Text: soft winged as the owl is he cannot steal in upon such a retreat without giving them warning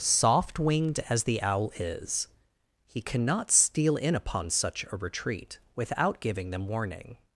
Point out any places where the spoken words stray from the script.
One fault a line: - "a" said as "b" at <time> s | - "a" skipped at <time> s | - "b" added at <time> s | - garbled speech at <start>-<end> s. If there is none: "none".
none